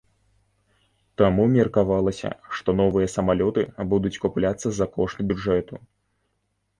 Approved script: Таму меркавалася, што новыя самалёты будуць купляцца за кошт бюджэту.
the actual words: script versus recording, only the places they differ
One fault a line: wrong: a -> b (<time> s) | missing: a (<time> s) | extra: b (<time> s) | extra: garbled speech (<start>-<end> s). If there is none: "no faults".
no faults